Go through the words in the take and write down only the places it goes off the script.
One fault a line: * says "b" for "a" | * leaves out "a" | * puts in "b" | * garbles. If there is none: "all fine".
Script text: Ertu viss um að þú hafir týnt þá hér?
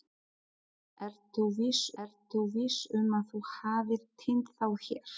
* puts in "ertu viss"